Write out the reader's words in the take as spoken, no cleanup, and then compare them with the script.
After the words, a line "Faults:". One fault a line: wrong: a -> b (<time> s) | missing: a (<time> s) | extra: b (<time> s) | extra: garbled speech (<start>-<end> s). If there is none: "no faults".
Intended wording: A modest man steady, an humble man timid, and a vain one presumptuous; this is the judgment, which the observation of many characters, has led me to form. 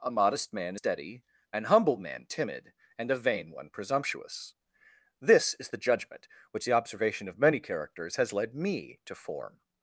A modest man steady, an humble man timid, and a vain one presumptuous; this is the judgment, which the observation of many characters, has led me to form.
Faults:
no faults